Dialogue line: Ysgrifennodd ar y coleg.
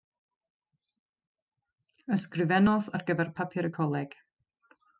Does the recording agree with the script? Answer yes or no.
no